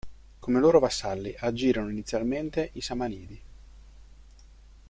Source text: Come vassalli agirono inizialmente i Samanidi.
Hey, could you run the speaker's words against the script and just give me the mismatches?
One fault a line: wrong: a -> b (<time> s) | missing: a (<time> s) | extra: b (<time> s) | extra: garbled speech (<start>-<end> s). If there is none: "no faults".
extra: loro (0.6 s)